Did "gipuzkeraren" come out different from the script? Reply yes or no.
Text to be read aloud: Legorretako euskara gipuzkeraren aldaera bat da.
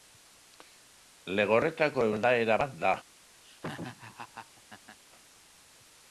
yes